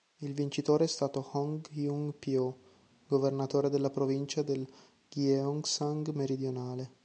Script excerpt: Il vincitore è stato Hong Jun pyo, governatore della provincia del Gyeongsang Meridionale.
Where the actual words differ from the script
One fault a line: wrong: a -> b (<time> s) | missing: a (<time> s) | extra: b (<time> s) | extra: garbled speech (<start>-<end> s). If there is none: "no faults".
no faults